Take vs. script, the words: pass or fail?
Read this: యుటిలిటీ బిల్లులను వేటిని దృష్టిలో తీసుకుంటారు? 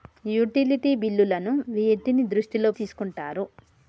pass